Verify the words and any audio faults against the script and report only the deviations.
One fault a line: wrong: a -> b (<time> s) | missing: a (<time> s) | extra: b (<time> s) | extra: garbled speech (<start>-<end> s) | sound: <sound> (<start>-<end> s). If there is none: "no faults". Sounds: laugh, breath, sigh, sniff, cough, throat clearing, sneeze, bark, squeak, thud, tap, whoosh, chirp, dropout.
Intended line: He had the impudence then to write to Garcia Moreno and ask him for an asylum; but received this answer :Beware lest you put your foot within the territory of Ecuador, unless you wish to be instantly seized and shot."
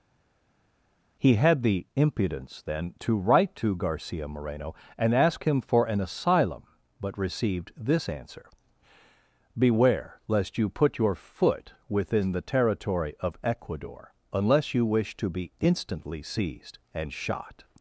no faults